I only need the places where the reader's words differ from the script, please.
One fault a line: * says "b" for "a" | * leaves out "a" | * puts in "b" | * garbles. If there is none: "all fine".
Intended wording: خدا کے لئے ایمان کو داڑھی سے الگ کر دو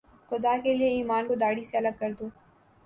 all fine